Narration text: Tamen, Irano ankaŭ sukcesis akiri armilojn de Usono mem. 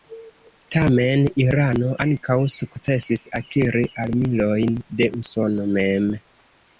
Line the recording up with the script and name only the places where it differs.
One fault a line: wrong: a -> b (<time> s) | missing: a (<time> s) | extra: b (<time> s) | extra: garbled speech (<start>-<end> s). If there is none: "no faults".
no faults